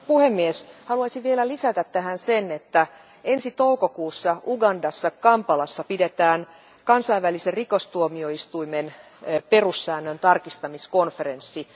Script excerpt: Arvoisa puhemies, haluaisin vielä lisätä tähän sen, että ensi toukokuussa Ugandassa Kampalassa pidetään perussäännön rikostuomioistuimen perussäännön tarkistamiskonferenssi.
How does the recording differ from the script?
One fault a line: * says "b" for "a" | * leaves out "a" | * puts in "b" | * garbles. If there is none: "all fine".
* says "kansainvälisen" for "perussäännön"